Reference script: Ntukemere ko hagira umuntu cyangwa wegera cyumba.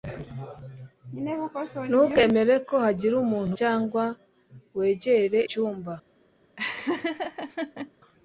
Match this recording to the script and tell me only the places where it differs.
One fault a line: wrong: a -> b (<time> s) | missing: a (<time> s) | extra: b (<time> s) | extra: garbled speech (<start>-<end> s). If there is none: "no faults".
no faults